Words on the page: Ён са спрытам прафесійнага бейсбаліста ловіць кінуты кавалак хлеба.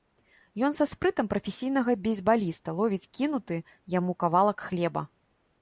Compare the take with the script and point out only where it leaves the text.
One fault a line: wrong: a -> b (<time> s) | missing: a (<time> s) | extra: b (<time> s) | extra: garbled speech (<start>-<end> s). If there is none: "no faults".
extra: яму (4.0 s)